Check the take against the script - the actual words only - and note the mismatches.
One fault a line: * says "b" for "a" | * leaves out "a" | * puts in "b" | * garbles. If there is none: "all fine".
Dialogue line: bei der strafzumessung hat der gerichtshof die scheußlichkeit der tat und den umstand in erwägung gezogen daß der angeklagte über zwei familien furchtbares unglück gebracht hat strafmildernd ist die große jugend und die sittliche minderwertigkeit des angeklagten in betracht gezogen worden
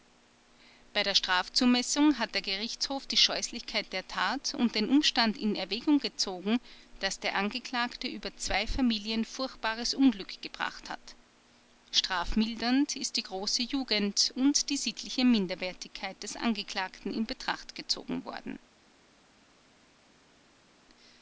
all fine